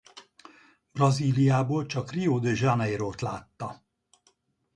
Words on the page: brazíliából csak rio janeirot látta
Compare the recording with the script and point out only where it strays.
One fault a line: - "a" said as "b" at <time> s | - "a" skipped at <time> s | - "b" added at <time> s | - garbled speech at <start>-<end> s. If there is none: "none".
- "de" added at 2.4 s